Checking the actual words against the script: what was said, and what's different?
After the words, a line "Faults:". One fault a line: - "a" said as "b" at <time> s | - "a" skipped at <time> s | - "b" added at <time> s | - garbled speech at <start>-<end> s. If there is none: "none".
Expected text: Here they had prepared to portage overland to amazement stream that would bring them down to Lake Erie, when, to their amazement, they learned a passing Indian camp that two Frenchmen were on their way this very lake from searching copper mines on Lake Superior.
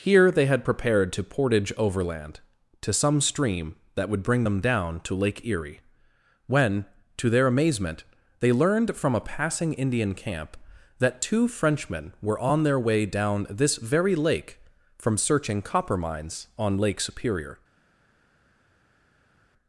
Here they had prepared to portage overland to some stream that would bring them down to Lake Erie, when, to their amazement, they learned from a passing Indian camp that two Frenchmen were on their way down this very lake from searching copper mines on Lake Superior.
Faults:
- "amazement" said as "some" at 2.9 s
- "from" added at 9.0 s
- "down" added at 13.1 s